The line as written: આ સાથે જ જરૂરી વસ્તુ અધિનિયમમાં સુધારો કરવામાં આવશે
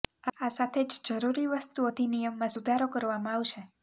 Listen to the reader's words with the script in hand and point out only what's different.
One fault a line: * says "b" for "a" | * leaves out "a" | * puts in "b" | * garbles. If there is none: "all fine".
all fine